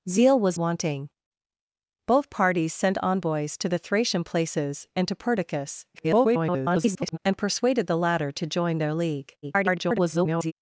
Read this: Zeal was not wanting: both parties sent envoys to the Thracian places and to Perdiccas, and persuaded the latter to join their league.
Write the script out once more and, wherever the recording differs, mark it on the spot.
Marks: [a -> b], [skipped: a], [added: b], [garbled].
Zeal was [skipped: not] wanting: both parties sent envoys to the Thracian places and to Perdiccas, [garbled] and persuaded the latter to join their league. [garbled]